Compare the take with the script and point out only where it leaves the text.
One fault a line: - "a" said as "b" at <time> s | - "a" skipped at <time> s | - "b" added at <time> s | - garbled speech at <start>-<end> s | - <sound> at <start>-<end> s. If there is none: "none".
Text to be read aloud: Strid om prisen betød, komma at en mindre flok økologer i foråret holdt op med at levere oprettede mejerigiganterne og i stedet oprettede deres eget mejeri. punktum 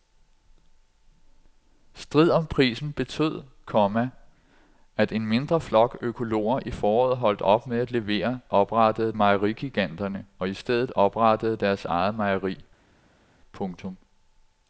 none